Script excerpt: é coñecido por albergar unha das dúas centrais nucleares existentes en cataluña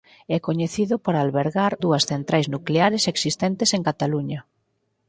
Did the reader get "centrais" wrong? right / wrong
right